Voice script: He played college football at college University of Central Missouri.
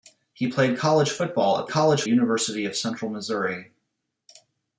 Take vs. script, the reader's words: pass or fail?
pass